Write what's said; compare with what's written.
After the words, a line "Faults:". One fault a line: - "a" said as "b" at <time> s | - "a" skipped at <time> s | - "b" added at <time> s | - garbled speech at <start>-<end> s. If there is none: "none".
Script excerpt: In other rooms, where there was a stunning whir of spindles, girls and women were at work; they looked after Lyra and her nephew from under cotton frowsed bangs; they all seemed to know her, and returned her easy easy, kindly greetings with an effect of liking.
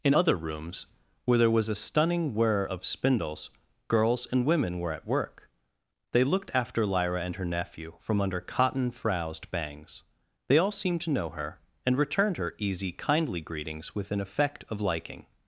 In other rooms, where there was a stunning whir of spindles, girls and women were at work; they looked after Lyra and her nephew from under cotton frowsed bangs; they all seemed to know her, and returned her easy, kindly greetings with an effect of liking.
Faults:
- "easy" skipped at 12.9 s